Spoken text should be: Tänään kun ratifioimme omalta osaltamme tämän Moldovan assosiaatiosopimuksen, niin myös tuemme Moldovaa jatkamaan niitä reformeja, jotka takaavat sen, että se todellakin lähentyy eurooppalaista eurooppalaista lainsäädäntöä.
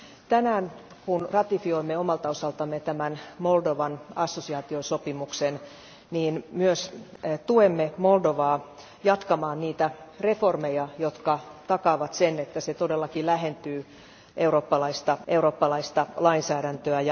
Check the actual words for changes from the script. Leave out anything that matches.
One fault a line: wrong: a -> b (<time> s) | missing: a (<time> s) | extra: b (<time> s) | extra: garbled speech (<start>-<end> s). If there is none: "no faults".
no faults